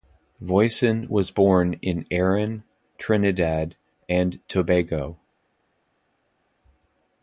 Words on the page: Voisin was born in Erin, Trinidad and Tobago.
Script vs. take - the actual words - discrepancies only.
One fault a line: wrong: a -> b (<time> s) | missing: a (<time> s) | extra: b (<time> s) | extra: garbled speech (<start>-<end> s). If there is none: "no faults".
no faults